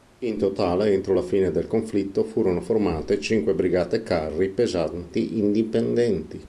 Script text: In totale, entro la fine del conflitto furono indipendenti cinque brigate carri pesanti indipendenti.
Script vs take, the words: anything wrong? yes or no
yes